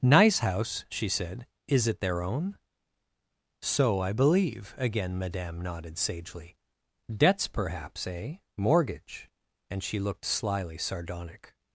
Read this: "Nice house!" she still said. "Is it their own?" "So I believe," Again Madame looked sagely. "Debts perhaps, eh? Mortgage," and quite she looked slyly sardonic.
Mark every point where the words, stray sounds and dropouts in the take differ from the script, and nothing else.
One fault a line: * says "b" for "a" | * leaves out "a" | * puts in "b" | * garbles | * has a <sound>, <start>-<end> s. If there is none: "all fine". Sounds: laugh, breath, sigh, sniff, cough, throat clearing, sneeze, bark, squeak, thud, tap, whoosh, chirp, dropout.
* leaves out "still"
* says "nodded" for "looked"
* leaves out "quite"